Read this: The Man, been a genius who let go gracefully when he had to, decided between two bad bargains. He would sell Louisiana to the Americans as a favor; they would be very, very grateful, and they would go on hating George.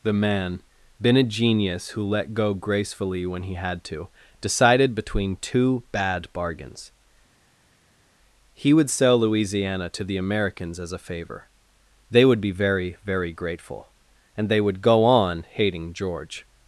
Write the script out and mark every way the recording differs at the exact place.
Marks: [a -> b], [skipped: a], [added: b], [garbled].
The Man, been a genius who let go gracefully when he had to, decided between two bad bargains. He would sell Louisiana to the Americans as a favor; they would be very, very grateful, and they would go on hating George.